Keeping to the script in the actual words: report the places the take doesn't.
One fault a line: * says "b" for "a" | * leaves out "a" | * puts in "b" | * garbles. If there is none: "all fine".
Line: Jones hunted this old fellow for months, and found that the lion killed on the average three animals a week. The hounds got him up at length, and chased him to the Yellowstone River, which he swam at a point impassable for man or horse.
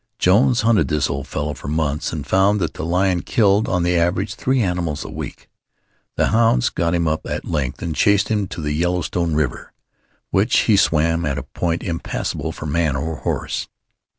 all fine